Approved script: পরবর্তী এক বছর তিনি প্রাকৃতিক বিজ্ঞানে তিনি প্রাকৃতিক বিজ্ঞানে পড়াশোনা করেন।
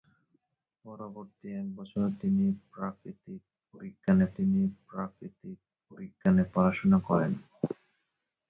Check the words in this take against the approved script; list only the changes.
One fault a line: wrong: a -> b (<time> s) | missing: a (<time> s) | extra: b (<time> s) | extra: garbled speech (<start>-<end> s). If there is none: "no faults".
no faults